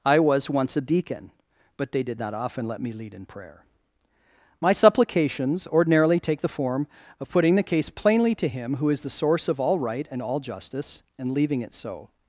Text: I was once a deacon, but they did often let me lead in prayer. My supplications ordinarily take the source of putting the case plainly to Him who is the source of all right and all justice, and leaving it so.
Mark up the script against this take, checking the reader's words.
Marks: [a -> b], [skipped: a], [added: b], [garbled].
I was once a deacon, but they did [added: not] often let me lead in prayer. My supplications ordinarily take the [source -> form] of putting the case plainly to Him who is the source of all right and all justice, and leaving it so.